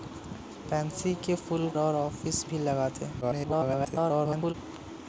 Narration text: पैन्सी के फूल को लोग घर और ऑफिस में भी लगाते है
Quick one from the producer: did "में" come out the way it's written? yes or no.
no